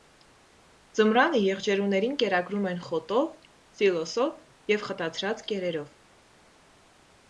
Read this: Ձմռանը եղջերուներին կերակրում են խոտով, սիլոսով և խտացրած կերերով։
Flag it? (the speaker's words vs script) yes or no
no